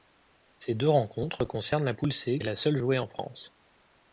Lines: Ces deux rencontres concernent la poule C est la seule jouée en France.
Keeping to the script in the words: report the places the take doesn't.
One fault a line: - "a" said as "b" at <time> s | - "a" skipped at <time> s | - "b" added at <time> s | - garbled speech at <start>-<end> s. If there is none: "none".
none